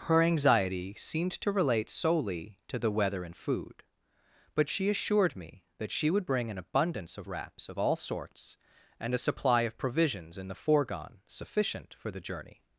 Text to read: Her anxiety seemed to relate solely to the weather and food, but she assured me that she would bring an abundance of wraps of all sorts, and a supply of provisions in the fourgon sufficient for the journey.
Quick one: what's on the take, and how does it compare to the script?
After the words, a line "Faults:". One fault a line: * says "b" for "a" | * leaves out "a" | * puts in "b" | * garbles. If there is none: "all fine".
Her anxiety seemed to relate solely to the weather and food, but she assured me that she would bring an abundance of wraps of all sorts, and a supply of provisions in the fourgon sufficient for the journey.
Faults:
all fine